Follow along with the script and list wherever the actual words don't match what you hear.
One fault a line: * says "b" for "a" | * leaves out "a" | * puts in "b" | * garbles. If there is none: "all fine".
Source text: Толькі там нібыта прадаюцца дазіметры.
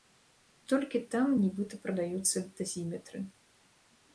all fine